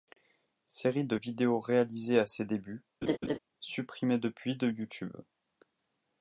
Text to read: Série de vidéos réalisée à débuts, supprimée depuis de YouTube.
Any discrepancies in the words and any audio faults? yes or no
yes